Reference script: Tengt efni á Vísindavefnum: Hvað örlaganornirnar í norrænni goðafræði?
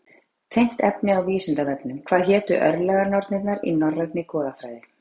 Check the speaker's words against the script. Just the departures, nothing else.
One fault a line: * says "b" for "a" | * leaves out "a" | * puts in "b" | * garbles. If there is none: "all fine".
* puts in "hétu"